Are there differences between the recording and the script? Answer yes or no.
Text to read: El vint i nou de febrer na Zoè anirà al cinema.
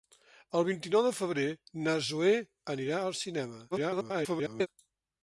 yes